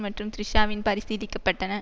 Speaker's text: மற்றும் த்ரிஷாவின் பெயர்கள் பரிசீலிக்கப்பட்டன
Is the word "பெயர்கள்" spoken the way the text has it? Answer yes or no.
no